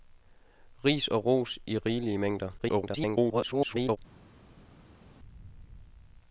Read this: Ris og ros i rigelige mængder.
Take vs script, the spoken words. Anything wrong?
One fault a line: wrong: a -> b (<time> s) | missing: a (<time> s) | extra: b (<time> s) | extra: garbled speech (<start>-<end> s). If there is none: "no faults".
extra: garbled speech (2.6-4.0 s)